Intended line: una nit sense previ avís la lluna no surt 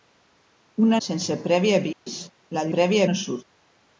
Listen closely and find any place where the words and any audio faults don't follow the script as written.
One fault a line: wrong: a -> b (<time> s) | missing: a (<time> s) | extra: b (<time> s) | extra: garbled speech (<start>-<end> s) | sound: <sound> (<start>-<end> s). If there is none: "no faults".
missing: nit (1.0 s)
sound: dropout (1.9-2.1 s)
wrong: lluna -> previ (2.8 s)